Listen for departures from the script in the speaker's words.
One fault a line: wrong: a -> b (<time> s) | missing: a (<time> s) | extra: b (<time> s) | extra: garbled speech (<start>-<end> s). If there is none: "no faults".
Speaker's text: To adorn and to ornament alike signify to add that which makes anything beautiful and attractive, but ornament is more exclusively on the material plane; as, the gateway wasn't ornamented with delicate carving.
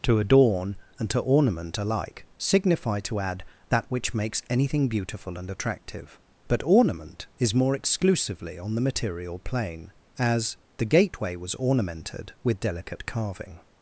wrong: wasn't -> was (11.4 s)